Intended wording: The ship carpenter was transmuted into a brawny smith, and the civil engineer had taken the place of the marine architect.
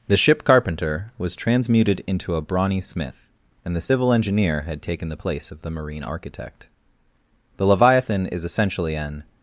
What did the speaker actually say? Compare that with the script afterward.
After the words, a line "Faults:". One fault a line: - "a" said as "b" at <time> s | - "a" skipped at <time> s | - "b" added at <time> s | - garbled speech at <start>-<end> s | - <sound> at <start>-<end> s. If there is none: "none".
The ship carpenter was transmuted into a brawny smith, and the civil engineer had taken the place of the marine architect. The Leviathan is essentially an
Faults:
- "The Leviathan is essentially an" added at 7.6 s